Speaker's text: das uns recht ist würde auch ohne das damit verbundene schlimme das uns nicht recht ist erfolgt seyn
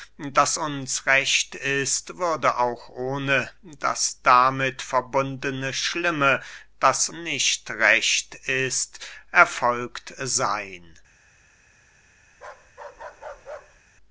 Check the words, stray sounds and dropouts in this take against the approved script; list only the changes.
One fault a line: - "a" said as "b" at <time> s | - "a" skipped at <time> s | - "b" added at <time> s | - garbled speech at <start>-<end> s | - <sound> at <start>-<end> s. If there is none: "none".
- "uns" skipped at 7.1 s
- bark at 12.3-13.8 s